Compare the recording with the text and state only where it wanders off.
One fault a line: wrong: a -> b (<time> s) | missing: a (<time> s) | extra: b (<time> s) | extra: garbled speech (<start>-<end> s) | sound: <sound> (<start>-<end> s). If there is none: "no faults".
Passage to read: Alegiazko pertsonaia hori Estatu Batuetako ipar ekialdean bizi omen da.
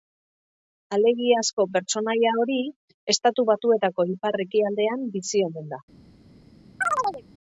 sound: chirp (6.8-7.2 s)